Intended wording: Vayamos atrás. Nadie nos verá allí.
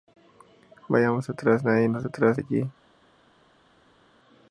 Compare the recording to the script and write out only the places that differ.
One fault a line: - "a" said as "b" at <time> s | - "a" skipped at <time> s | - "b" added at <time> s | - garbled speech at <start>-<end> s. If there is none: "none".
- "verá" said as "atrás" at 2.0 s